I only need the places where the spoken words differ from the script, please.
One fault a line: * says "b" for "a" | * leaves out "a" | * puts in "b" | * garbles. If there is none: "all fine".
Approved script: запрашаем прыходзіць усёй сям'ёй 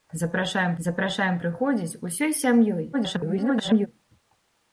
* puts in "запрашаем"
* garbles